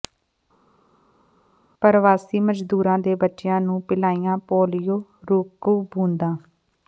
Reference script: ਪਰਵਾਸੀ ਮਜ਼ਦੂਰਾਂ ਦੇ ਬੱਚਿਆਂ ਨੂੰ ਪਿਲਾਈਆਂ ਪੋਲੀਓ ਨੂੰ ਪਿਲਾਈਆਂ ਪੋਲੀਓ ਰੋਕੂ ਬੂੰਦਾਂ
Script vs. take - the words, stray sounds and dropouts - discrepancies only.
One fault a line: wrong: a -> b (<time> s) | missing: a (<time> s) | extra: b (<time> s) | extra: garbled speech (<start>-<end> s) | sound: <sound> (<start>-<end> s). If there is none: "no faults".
missing: ਨੂੰ ਪਿਲਾਈਆਂ ਪੋਲੀਓ (5.0 s)